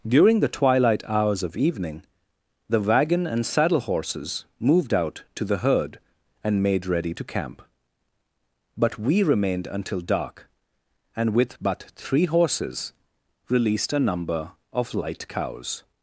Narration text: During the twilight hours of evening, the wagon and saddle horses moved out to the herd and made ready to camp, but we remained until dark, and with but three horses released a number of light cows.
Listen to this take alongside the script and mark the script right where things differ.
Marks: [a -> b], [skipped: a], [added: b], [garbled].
During the twilight hours of evening, the wagon and saddle horses moved out to the herd and made ready to camp, but we remained until dark, and with but three horses released a number of light cows.